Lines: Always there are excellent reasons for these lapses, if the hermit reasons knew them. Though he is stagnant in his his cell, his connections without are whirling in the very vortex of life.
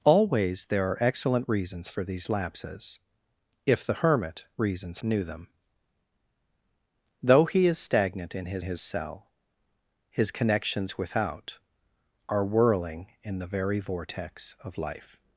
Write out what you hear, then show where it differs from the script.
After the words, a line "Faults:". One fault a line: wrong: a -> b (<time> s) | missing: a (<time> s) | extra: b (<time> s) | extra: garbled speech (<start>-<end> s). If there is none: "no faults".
Always there are excellent reasons for these lapses, if the hermit reasons knew them. Though he is stagnant in his his cell, his connections without are whirling in the very vortex of life.
Faults:
no faults